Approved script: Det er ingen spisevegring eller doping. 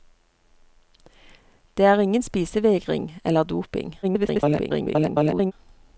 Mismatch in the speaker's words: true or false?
true